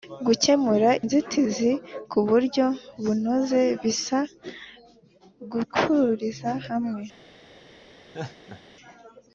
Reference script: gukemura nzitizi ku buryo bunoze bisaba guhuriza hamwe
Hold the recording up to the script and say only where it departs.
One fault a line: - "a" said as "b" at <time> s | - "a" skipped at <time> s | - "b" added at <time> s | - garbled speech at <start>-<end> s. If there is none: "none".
none